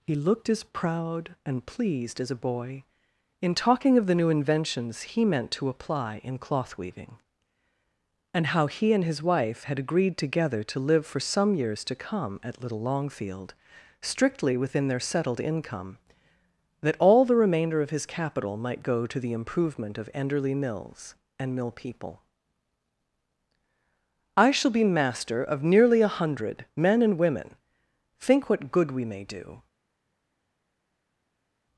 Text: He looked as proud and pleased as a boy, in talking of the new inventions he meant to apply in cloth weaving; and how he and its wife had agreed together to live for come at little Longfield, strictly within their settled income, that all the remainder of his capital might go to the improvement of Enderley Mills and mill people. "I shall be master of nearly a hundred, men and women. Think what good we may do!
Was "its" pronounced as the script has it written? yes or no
no